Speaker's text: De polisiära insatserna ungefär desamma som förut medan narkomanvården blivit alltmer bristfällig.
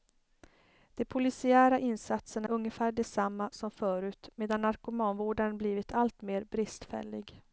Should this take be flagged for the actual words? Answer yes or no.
no